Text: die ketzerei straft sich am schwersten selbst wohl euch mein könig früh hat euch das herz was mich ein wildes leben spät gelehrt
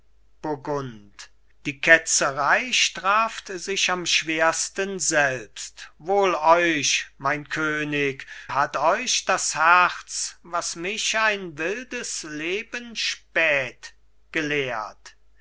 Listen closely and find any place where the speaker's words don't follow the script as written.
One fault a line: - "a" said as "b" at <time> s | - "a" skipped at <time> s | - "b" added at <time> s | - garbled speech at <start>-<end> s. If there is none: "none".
- "früh" skipped at 8.2 s